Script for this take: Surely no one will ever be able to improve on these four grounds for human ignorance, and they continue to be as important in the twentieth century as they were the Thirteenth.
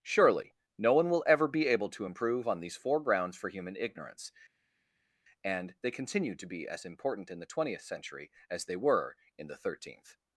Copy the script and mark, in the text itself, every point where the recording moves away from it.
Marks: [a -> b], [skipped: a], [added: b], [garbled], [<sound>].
Surely no one will ever be able to improve on these four grounds for human ignorance, and they continue to be as important in the twentieth century as they were [added: in] the Thirteenth.